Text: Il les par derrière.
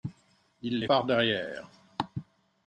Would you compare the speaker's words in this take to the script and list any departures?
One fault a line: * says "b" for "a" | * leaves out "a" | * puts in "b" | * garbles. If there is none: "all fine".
all fine